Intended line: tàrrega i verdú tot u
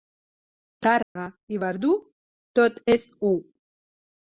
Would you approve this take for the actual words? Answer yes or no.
no